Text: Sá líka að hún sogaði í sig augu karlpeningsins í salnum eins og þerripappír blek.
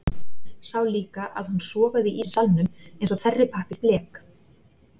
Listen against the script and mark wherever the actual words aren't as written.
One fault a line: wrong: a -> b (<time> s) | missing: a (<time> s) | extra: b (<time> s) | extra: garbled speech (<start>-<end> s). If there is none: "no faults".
missing: sig augu karlpeningsins (2.2 s)